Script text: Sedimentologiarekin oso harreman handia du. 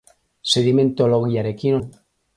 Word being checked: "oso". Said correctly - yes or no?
no